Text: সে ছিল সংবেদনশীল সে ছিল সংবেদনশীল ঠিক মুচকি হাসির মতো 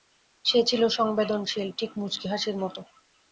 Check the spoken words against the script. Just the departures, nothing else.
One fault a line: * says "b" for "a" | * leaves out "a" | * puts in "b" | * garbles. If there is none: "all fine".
* leaves out "সে ছিল সংবেদনশীল"